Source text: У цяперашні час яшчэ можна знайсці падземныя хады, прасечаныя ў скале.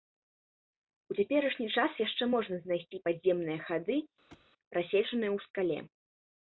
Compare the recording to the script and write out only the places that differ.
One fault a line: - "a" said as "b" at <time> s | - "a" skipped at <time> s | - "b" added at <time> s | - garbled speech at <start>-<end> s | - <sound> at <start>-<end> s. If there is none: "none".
- thud at 4.3-4.5 s